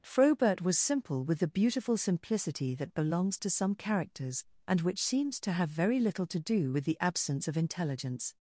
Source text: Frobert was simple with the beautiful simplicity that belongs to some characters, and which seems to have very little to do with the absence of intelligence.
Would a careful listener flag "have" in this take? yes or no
no